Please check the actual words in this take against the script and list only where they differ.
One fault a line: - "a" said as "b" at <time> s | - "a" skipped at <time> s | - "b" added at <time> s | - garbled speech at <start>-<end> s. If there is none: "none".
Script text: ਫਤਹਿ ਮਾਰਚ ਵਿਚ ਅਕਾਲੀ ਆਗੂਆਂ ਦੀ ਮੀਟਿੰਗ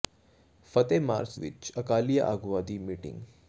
none